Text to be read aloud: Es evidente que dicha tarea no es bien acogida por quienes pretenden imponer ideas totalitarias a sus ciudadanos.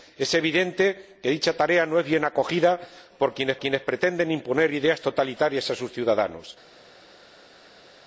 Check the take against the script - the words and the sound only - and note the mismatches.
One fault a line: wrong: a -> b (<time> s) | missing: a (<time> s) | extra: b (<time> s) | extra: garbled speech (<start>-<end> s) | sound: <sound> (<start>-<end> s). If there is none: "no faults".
extra: quienes (3.6 s)